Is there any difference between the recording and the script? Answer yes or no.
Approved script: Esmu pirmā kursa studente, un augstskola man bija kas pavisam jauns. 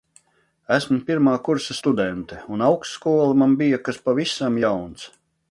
no